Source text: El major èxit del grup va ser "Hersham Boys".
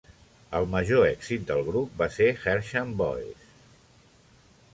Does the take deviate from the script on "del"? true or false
false